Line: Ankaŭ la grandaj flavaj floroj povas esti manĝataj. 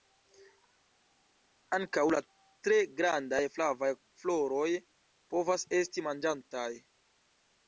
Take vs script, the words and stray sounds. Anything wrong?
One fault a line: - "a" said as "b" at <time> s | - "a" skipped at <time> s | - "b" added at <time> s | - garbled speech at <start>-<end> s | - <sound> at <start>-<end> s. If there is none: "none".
- "tre" added at 2.7 s